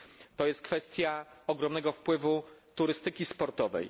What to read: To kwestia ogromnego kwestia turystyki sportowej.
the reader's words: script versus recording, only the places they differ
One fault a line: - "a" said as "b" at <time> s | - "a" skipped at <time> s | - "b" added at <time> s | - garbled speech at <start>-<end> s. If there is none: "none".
- "jest" added at 0.5 s
- "kwestia" said as "wpływu" at 1.9 s